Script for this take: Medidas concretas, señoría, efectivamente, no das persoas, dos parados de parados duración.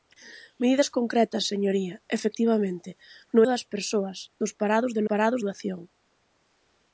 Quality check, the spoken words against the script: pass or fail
pass